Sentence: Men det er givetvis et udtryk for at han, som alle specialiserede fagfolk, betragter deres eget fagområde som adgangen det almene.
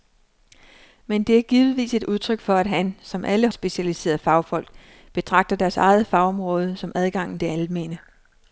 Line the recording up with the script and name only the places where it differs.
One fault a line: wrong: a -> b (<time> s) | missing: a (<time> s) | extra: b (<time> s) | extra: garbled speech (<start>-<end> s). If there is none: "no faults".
no faults